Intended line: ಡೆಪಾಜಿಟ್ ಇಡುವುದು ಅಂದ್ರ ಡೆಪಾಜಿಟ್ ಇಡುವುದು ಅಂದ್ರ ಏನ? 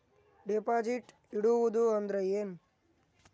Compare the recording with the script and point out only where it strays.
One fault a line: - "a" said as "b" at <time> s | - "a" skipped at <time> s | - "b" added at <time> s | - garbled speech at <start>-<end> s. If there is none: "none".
- "ಡೆಪಾಜಿಟ್ ಇಡುವುದು ಅಂದ್ರ" skipped at 2.2 s